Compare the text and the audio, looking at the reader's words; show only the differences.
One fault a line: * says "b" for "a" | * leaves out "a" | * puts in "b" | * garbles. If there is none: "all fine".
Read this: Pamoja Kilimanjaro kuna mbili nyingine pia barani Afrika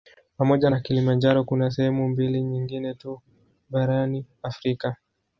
* puts in "na"
* puts in "sehemu"
* says "tu" for "pia"